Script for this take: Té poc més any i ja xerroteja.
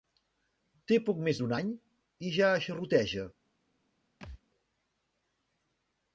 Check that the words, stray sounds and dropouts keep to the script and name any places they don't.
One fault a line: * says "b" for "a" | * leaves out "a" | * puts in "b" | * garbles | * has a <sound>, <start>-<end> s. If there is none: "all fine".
* puts in "d'un"
* has a thud, 4.2-4.4 s